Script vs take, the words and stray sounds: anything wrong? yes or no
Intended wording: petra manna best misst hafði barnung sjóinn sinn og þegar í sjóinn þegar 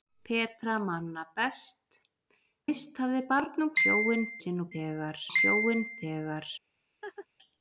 yes